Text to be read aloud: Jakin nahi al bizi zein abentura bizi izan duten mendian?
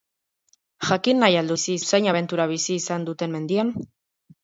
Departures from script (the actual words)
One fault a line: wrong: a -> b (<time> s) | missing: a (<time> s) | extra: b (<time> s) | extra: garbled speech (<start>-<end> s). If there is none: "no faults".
no faults